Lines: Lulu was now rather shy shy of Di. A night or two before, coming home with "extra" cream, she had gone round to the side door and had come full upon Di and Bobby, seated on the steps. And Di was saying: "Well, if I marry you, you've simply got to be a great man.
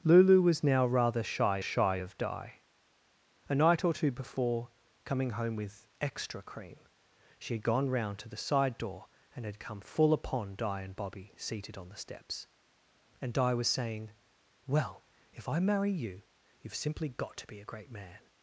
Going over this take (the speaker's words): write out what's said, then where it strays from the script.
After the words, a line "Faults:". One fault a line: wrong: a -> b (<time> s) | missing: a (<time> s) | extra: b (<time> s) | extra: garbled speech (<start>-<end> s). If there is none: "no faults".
Lulu was now rather shy shy of Di. A night or two before, coming home with "extra" cream, she had gone round to the side door and had come full upon Di and Bobby, seated on the steps. And Di was saying: "Well, if I marry you, you've simply got to be a great man.
Faults:
no faults